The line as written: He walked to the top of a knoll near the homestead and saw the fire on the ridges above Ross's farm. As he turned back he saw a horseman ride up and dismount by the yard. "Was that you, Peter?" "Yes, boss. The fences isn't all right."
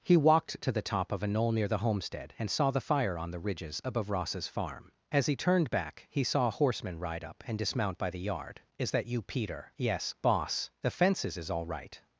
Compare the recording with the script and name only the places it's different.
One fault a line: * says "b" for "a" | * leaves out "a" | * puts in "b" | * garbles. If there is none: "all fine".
* says "Is" for "Was"
* says "is" for "isn't"